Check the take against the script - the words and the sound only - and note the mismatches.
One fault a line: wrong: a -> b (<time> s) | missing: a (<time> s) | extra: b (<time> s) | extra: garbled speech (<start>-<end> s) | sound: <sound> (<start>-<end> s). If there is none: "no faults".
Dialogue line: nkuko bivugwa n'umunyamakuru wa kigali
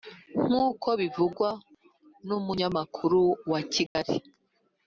sound: dropout (3.9-4.0 s)